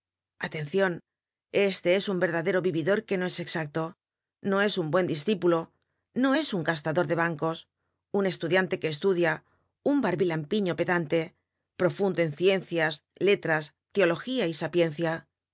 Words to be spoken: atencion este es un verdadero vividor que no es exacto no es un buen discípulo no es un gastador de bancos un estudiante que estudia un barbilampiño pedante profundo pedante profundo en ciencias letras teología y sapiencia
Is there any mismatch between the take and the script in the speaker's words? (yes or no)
yes